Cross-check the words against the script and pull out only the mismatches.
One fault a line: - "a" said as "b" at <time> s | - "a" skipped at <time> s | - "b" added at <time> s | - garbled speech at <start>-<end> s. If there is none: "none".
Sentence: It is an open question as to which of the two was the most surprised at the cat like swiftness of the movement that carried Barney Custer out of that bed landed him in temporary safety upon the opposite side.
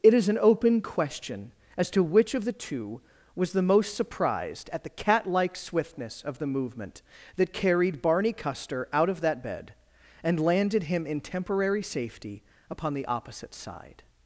- "and" added at 10.2 s